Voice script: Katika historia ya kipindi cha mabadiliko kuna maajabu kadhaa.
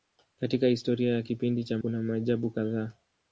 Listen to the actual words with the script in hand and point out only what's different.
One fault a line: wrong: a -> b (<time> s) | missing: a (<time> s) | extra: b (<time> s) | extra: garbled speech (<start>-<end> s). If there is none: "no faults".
missing: mabadiliko (1.8 s)